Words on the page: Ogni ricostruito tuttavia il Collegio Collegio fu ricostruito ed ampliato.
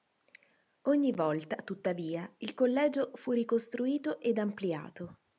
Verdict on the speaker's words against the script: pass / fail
fail